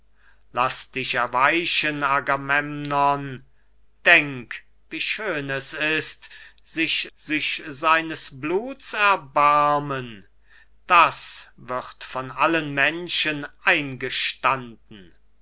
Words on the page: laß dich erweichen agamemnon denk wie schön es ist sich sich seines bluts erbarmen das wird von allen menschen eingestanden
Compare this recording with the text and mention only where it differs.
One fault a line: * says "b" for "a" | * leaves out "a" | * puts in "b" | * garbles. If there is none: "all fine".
all fine